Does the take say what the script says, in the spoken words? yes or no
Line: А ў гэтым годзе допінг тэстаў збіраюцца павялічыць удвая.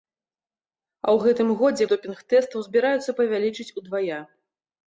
yes